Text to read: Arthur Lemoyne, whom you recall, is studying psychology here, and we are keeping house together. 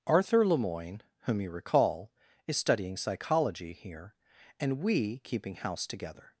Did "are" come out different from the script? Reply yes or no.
yes